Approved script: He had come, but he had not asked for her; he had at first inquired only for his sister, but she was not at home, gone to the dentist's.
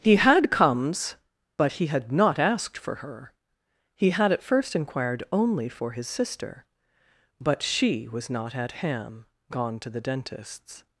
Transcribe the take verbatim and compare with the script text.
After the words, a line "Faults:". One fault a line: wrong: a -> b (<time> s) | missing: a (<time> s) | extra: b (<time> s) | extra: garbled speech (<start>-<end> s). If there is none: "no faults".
He had comes, but he had not asked for her; he had at first inquired only for his sister, but she was not at ham, gone to the dentist's.
Faults:
wrong: come -> comes (0.5 s)
wrong: home -> ham (8.8 s)